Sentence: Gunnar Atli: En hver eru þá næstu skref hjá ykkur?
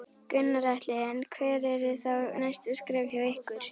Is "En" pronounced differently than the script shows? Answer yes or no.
no